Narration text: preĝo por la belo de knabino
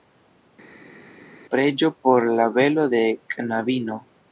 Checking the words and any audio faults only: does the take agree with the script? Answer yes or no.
yes